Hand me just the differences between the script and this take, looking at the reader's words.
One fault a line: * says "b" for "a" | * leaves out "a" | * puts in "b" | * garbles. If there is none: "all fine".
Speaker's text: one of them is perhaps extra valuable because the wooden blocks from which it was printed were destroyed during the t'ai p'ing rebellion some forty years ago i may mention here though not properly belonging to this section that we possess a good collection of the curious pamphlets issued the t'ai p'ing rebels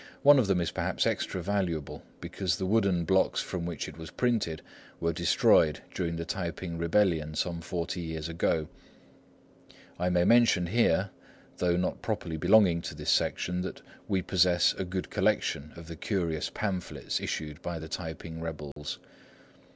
* puts in "by"